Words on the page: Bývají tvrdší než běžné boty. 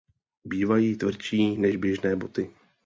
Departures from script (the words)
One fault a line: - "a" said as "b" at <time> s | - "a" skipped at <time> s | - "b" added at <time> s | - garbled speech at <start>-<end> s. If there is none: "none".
none